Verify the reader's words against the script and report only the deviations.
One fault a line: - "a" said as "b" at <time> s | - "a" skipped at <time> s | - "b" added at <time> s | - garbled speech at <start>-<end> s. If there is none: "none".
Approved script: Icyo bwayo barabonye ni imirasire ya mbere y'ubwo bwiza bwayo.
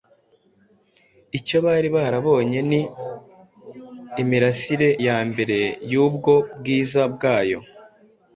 - "bwayo" said as "bari" at 1.6 s